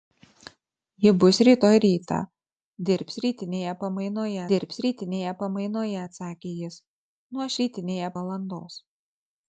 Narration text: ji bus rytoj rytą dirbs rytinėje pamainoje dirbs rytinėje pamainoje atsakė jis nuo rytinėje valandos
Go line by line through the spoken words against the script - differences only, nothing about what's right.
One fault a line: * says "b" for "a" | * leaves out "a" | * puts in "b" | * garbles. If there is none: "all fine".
all fine